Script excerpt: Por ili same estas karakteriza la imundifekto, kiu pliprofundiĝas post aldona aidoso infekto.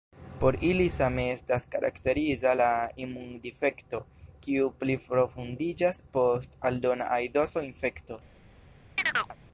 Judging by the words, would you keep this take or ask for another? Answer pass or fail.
pass